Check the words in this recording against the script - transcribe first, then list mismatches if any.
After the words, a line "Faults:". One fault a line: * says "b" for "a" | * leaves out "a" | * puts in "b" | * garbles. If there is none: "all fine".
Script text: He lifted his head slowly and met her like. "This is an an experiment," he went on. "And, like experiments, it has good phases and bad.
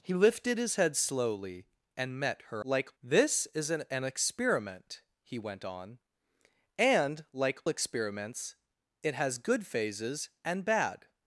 He lifted his head slowly and met her like. "This is an an experiment," he went on. "And, like experiments, it has good phases and bad.
Faults:
all fine